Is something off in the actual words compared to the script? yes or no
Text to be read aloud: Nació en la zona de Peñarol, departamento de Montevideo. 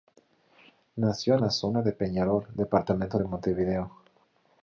no